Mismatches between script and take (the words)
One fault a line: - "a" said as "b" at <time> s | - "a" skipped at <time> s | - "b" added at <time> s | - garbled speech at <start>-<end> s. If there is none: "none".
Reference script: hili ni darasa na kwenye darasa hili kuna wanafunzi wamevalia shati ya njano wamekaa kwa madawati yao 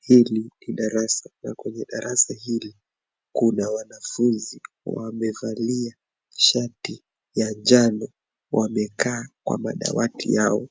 none